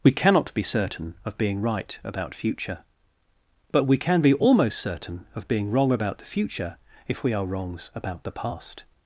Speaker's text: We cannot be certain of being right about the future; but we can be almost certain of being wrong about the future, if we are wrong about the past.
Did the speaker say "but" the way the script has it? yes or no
yes